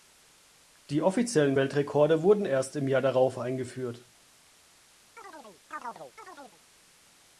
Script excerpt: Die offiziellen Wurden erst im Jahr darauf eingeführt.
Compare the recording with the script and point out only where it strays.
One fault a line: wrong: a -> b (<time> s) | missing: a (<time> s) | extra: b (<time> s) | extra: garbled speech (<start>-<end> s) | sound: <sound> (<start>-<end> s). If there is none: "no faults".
extra: Weltrekorde (1.6 s)
sound: chirp (5.2-6.6 s)